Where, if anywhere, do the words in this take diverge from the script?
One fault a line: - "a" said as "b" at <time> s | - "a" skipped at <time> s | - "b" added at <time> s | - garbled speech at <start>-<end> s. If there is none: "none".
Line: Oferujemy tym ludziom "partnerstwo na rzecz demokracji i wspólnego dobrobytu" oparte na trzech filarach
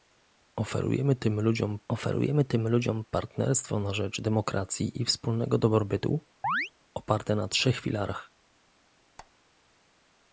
- "oferujemy tym ludziom" added at 1.9 s